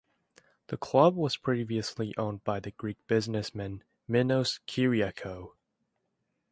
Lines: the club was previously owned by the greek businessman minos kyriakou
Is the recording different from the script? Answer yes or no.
no